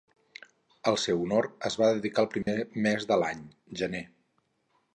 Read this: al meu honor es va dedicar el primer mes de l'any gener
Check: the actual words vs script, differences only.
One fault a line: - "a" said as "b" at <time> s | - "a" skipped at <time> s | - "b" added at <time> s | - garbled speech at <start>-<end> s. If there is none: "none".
- "meu" said as "seu" at 1.0 s